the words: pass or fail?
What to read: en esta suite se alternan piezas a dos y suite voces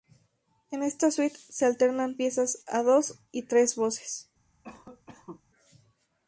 fail